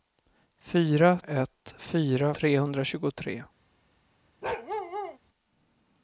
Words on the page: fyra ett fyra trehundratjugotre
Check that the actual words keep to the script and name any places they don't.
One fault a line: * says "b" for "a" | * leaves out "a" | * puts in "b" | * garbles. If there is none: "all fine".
all fine